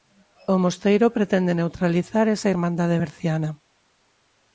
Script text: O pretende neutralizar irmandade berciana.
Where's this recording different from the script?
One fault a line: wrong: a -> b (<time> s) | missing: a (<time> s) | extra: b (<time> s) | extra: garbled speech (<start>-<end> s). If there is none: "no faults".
extra: mosteiro (0.6 s)
extra: esa (2.4 s)